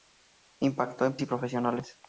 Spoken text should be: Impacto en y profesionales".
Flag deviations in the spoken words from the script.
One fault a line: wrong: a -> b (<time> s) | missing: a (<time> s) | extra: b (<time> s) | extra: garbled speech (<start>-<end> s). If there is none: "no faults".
no faults